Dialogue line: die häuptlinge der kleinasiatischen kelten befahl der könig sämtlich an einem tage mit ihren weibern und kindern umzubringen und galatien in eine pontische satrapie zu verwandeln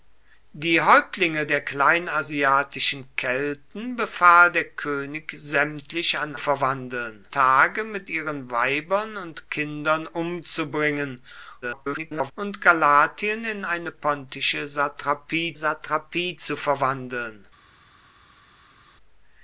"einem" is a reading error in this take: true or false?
true